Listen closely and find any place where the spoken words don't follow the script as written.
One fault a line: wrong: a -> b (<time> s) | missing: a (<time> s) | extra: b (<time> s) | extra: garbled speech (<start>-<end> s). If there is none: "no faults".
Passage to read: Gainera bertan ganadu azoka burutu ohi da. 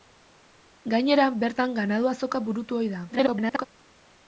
extra: garbled speech (3.1-3.7 s)